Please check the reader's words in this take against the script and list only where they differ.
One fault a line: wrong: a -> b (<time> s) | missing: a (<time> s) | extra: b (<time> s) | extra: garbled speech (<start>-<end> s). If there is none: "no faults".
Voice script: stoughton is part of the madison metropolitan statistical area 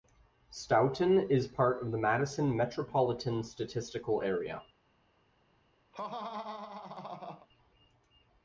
no faults